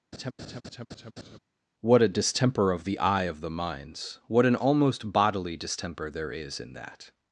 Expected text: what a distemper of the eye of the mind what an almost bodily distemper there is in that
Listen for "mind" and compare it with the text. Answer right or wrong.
wrong